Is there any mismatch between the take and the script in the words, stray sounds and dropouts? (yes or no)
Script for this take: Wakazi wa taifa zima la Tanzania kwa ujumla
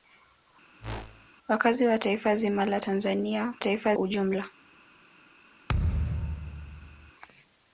yes